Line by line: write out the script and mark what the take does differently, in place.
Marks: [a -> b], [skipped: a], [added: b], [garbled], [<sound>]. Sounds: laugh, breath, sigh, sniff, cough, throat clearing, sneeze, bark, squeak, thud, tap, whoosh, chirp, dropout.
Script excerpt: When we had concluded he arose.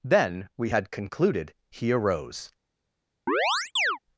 [When -> Then] we had concluded he arose. [chirp]